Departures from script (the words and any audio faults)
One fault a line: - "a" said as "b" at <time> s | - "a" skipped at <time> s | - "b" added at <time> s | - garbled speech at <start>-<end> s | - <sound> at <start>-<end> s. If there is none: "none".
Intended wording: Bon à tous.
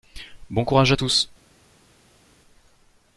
- "courage" added at 0.7 s